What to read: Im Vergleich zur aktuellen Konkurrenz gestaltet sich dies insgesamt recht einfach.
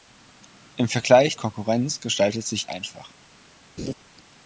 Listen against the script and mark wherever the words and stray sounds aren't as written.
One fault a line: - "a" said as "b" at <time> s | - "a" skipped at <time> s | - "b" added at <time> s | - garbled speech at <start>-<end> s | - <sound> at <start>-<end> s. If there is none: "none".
- "zur aktuellen" skipped at 1.4 s
- "dies insgesamt recht" skipped at 2.7 s
- laugh at 3.8-3.9 s